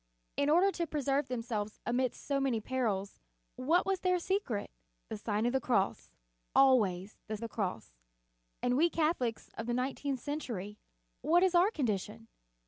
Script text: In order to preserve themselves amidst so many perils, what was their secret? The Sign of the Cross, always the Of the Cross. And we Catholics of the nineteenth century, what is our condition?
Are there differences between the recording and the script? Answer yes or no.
no